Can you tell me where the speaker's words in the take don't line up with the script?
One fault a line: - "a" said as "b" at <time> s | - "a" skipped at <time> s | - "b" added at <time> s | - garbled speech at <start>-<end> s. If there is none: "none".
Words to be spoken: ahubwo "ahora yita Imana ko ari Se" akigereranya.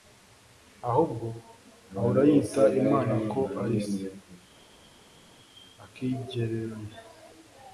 none